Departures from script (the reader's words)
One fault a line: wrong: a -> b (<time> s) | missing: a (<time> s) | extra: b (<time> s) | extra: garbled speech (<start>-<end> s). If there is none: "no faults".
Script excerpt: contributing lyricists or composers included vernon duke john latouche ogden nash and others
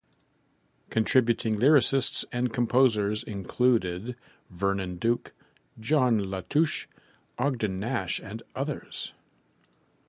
wrong: or -> and (2.3 s)